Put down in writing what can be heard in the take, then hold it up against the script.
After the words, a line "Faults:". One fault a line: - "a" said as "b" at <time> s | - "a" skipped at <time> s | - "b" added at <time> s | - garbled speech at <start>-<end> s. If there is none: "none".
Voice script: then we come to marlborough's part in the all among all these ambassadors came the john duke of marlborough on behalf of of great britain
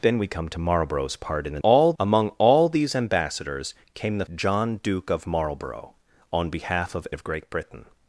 then we come to marlborough's part in the all among all these ambassadors came the john duke of marlborough on behalf of of great britain
Faults:
none